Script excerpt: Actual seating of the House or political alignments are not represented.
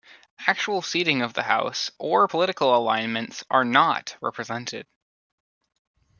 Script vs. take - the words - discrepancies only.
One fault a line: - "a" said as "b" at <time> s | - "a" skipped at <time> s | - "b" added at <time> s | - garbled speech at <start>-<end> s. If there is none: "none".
none